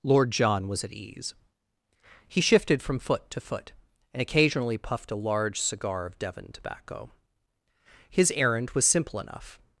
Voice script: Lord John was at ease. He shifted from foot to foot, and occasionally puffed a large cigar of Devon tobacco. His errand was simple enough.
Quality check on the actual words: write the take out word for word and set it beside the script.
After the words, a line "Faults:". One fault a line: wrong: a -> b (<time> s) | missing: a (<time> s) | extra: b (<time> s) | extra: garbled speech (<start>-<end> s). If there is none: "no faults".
Lord John was at ease. He shifted from foot to foot, and occasionally puffed a large cigar of Devon tobacco. His errand was simple enough.
Faults:
no faults